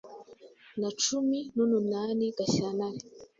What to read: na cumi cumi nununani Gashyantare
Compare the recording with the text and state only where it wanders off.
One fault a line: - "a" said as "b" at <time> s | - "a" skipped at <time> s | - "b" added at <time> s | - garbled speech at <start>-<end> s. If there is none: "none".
- "cumi" skipped at 1.4 s